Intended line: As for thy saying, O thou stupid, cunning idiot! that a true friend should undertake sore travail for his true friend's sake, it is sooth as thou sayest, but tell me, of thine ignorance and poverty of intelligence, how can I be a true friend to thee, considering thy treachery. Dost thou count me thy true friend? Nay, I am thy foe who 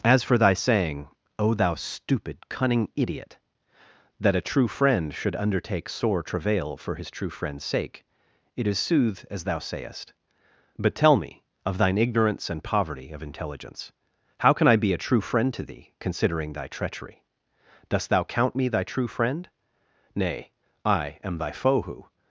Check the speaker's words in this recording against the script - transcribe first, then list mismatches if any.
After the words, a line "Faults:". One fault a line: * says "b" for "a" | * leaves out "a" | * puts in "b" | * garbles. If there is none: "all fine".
As for thy saying, O thou stupid, cunning idiot! that a true friend should undertake sore travail for his true friend's sake, it is sooth as thou sayest, but tell me, of thine ignorance and poverty of intelligence, how can I be a true friend to thee, considering thy treachery. Dost thou count me thy true friend? Nay, I am thy foe who
Faults:
all fine